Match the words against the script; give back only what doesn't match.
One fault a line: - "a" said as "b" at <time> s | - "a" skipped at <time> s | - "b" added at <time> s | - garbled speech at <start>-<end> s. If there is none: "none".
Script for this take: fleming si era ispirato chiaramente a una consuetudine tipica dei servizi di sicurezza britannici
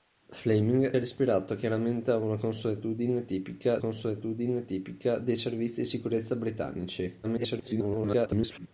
- "si" skipped at 0.9 s
- "consuetudine tipica" added at 3.8 s
- garbled speech at 7.2-8.7 s